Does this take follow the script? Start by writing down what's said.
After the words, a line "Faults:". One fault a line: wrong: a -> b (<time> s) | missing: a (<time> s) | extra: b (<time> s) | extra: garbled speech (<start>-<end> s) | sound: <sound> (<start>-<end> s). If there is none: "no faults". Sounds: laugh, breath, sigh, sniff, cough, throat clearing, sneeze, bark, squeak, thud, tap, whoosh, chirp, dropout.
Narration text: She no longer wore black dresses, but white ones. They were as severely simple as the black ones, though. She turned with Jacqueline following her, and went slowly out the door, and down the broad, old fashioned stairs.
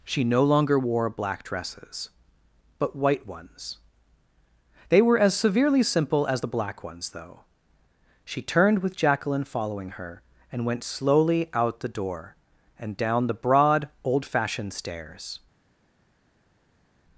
She no longer wore black dresses, but white ones. They were as severely simple as the black ones, though. She turned with Jacqueline following her, and went slowly out the door, and down the broad, old fashioned stairs.
Faults:
no faults